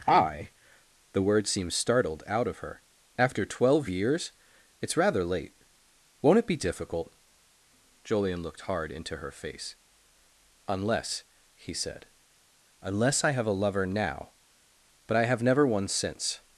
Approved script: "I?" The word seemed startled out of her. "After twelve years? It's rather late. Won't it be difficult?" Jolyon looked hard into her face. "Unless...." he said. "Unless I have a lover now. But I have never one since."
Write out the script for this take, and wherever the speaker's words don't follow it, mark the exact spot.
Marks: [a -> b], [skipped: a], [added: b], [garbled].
"I?" The word seemed startled out of her. "After twelve years? It's rather late. Won't it be difficult?" Jolyon looked hard into her face. "Unless...." he said. "Unless I have a lover now. But I have never one since."